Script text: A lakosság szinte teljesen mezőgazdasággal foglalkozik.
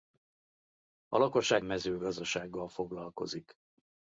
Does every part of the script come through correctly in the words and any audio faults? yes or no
no